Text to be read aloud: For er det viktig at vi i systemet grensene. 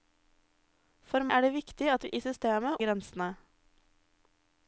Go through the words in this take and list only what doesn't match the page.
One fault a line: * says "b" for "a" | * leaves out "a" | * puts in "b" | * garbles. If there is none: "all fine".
all fine